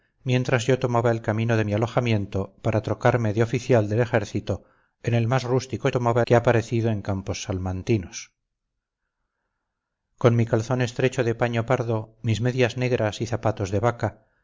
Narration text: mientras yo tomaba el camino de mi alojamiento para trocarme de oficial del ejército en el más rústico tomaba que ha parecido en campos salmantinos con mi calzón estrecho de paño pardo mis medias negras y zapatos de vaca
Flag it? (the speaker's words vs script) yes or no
no